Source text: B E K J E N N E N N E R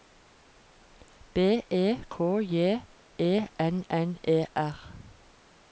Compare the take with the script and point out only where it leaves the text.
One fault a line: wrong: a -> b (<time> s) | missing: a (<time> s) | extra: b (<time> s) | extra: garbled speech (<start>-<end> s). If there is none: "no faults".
missing: N N E (4.5 s)